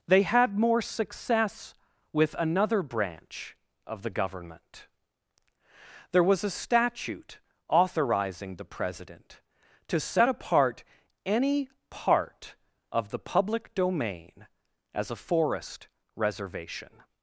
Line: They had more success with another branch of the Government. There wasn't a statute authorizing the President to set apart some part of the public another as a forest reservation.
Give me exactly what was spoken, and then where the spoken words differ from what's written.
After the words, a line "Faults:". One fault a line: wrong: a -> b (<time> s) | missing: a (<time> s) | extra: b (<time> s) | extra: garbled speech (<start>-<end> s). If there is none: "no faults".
They had more success with another branch of the Government. There was a statute authorizing the President to set apart any part of the public domain as a forest reservation.
Faults:
wrong: wasn't -> was (6.2 s)
wrong: some -> any (11.2 s)
wrong: another -> domain (13.7 s)